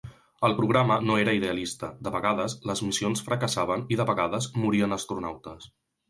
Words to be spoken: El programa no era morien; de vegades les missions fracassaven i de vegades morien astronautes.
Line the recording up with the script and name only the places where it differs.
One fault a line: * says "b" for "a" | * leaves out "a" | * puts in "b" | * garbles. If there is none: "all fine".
* says "idealista" for "morien"